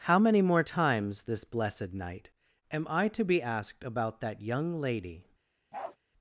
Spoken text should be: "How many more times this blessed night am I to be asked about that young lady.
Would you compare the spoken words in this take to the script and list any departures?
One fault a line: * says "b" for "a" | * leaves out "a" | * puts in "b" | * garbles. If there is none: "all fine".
all fine